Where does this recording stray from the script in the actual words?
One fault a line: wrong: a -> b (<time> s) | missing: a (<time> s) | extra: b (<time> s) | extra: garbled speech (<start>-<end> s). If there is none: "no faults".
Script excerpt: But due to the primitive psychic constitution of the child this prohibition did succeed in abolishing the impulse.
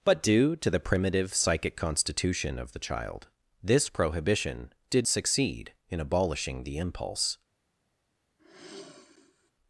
no faults